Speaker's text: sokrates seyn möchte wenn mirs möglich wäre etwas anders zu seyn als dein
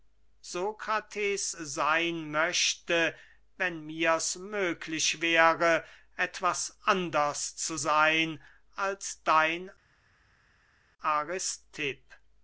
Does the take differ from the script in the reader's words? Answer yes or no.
no